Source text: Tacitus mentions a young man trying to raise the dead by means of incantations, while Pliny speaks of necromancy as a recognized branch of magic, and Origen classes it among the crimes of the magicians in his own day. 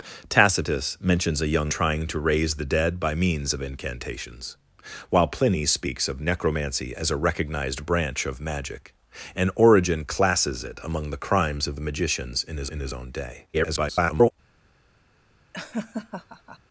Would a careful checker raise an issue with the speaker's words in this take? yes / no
yes